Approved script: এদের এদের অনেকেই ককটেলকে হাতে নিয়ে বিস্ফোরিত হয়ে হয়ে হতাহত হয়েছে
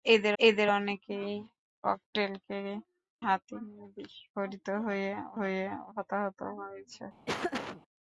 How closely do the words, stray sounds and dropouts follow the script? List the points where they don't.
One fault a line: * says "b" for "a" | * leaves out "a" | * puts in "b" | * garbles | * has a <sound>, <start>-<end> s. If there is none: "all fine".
* has a laugh, 7.3-7.8 s